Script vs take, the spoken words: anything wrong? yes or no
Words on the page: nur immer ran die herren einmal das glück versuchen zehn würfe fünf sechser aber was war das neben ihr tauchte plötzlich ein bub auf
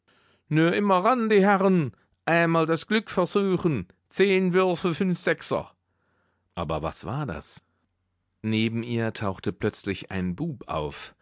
no